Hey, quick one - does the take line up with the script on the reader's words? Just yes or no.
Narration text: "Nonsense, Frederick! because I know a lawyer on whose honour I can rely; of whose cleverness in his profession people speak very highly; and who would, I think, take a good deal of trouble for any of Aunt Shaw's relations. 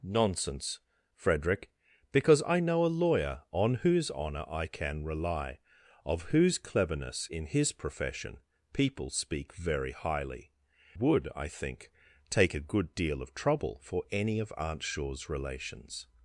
no